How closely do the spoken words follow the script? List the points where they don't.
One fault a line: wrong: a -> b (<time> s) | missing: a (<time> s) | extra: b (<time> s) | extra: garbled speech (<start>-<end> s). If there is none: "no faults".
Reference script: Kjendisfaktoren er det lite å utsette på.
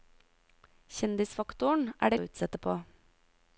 missing: lite (2.2 s)